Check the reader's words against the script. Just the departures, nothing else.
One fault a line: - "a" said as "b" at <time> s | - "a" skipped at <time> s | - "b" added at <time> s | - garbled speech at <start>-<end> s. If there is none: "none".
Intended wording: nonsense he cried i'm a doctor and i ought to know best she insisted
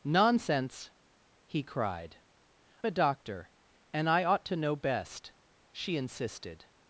- "i'm" skipped at 2.2 s